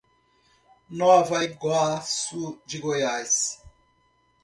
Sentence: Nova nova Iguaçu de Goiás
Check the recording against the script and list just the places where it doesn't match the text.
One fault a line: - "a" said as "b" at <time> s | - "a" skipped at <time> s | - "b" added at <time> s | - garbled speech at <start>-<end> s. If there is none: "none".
- "nova" skipped at 1.4 s